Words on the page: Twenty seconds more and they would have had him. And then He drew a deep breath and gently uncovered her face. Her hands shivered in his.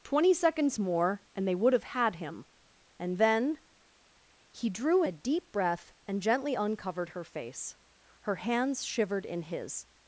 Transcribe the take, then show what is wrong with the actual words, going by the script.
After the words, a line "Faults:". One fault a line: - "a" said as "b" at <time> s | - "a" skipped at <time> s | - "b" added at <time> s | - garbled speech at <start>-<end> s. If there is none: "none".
Twenty seconds more and they would have had him. And then He drew a deep breath and gently uncovered her face. Her hands shivered in his.
Faults:
none